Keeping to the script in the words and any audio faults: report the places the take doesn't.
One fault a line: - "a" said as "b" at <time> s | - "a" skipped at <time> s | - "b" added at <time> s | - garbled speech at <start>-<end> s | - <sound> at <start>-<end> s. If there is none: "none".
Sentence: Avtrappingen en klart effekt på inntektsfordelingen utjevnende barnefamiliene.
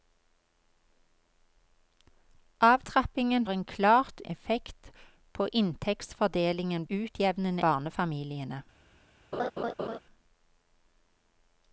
- laugh at 9.3-10.0 s